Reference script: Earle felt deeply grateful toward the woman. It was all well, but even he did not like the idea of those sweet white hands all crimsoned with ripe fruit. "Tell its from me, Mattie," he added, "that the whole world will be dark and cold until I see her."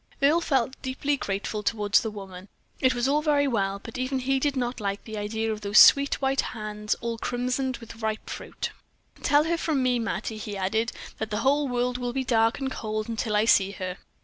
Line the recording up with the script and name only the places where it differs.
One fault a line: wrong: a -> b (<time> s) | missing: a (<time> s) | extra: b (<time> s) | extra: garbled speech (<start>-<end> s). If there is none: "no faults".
extra: very (3.2 s)
wrong: its -> her (9.4 s)